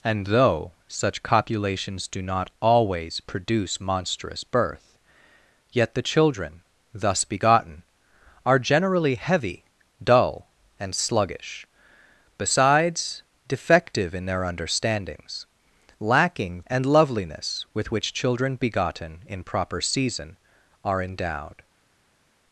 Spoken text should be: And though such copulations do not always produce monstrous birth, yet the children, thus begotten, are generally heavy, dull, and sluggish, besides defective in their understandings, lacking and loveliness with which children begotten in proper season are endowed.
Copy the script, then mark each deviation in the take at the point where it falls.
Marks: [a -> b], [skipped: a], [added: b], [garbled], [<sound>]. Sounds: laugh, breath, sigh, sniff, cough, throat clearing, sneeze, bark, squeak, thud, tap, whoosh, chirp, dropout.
And though such copulations do not always produce monstrous birth, yet the children, thus begotten, are generally heavy, dull, and sluggish, besides defective in their understandings, lacking and loveliness with which children begotten in proper season are endowed.